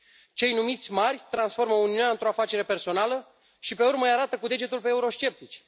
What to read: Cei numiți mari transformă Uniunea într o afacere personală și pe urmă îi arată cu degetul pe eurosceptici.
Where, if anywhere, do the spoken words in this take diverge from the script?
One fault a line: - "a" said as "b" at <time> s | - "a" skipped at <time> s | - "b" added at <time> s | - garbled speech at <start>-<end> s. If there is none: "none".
none